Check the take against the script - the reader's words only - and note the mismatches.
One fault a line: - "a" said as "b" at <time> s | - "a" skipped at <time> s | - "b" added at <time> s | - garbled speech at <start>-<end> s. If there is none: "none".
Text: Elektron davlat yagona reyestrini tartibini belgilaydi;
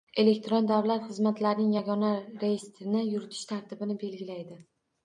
- "xizmatlarining" added at 1.1 s
- "yuritish" added at 3.1 s